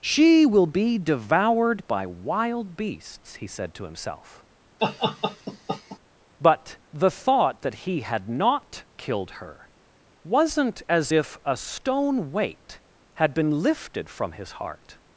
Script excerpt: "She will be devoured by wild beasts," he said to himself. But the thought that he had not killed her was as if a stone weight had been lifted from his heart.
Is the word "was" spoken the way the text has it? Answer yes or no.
no